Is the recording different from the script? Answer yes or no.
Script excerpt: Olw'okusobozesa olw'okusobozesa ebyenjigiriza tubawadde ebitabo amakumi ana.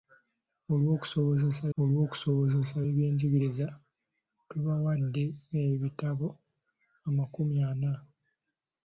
no